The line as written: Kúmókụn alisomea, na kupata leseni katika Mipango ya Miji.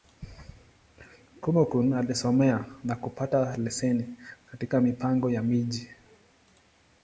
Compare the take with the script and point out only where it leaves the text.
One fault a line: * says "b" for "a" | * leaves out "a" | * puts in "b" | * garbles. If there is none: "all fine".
all fine